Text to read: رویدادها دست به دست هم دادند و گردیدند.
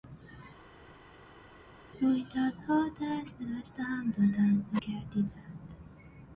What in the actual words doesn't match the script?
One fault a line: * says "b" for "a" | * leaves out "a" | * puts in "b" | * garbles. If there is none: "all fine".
all fine